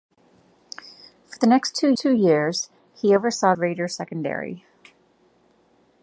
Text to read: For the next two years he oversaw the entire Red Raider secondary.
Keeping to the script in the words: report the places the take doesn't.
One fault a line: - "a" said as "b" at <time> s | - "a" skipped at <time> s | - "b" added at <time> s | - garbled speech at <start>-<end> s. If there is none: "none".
- "two" added at 2.0 s
- "the entire Red" skipped at 3.6 s